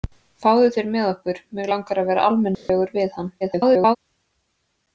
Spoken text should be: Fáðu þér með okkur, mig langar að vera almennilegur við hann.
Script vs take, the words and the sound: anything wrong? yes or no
yes